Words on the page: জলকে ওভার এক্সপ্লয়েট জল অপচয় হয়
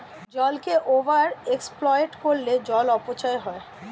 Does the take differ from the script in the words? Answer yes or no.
yes